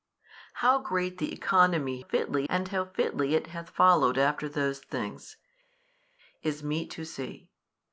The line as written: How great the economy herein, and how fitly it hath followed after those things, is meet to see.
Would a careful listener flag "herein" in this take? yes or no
yes